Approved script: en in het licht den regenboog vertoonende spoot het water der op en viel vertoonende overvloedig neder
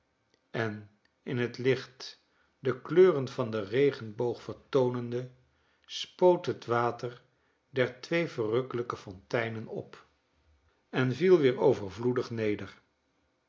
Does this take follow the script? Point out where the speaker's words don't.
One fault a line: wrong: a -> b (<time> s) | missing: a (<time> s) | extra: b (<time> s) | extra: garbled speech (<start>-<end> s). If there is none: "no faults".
extra: de kleuren van (2.6 s)
extra: twee verrukkelijke fonteinen (8.0 s)
wrong: vertoonende -> weer (11.4 s)